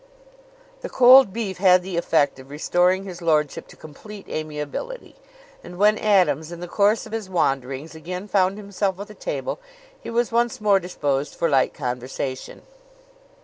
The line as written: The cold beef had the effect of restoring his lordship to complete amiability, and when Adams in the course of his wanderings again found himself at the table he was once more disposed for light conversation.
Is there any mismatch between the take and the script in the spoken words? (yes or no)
no